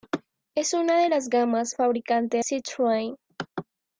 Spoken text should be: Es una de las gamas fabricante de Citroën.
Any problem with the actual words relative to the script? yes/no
no